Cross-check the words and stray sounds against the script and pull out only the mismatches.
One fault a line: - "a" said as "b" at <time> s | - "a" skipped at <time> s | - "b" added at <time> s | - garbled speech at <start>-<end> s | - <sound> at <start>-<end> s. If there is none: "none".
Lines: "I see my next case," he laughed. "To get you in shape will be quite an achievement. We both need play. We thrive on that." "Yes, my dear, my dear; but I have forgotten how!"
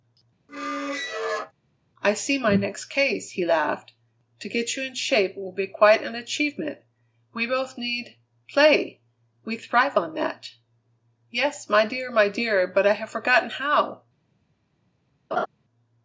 - squeak at 0.5-1.5 s
- laugh at 15.3-15.5 s